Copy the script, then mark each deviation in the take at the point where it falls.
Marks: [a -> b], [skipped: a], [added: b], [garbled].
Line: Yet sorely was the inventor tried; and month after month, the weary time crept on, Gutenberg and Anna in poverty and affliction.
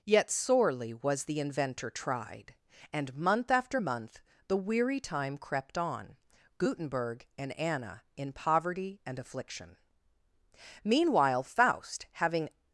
Yet sorely was the inventor tried; and month after month, the weary time crept on, Gutenberg and Anna in poverty and affliction. [added: Meanwhile Faust having]